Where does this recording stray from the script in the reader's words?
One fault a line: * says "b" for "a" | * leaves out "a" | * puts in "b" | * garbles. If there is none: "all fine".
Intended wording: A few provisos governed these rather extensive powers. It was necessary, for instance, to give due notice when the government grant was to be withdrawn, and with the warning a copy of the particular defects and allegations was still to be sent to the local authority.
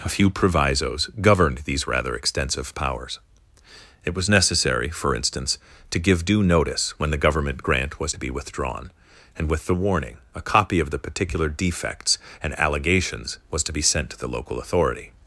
* leaves out "still"